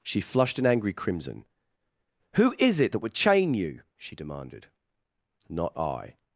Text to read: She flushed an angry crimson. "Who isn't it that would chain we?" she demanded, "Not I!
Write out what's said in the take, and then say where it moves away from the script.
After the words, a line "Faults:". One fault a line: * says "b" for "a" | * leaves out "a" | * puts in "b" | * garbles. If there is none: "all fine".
She flushed an angry crimson. "Who is it that would chain you?" she demanded, "Not I!
Faults:
* says "is" for "isn't"
* says "you" for "we"